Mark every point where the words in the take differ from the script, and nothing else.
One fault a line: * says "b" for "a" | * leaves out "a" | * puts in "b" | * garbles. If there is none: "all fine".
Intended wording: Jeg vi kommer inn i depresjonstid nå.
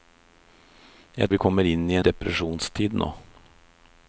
all fine